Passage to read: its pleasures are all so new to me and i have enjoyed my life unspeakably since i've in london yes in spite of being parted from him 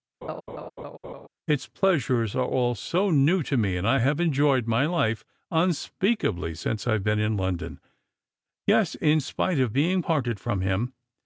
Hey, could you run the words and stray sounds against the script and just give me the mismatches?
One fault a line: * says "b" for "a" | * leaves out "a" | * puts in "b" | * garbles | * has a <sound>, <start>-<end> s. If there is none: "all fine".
* has a laugh, 0.2-1.3 s
* puts in "been"